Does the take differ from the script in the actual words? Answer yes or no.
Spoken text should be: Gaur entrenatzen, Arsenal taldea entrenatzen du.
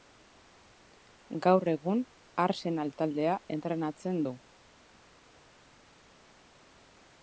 yes